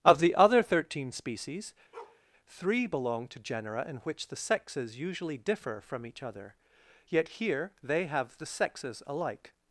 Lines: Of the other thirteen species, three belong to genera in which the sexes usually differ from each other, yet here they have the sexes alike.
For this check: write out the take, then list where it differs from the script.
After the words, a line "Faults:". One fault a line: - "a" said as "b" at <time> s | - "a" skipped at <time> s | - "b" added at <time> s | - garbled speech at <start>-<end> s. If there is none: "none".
Of the other thirteen species, three belong to genera in which the sexes usually differ from each other, yet here they have the sexes alike.
Faults:
none